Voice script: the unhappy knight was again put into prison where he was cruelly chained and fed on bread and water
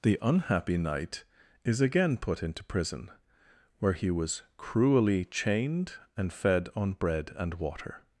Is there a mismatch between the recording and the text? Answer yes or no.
yes